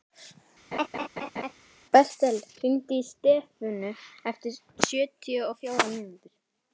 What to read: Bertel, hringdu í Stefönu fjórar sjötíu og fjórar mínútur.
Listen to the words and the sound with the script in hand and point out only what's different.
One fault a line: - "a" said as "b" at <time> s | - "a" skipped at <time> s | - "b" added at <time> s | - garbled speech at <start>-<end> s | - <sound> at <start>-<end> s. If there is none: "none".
- laugh at 0.7-1.5 s
- "fjórar" said as "eftir" at 4.3 s